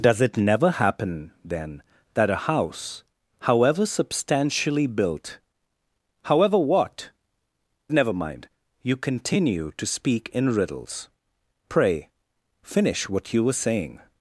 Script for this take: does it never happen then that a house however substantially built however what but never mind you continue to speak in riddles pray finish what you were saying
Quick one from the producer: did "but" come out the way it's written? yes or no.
no